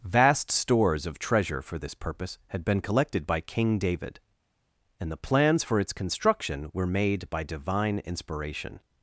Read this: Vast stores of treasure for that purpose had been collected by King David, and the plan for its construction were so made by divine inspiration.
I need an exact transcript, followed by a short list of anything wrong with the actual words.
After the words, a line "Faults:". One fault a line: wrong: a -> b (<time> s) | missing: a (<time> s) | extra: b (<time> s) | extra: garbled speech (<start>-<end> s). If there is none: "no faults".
Vast stores of treasure for this purpose had been collected by King David, and the plans for its construction were made by divine inspiration.
Faults:
wrong: that -> this (1.8 s)
wrong: plan -> plans (5.2 s)
missing: so (6.9 s)